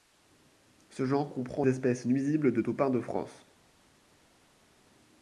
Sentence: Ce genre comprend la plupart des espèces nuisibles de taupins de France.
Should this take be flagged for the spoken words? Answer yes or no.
yes